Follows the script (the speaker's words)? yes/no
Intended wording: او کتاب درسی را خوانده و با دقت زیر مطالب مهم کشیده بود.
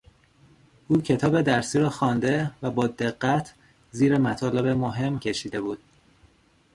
yes